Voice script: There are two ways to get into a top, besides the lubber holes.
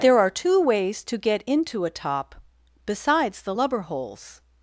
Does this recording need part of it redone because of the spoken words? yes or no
no